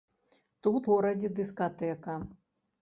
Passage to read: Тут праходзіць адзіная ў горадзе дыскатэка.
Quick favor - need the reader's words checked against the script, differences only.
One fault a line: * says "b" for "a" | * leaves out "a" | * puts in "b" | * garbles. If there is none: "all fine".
* leaves out "праходзіць адзіная ў"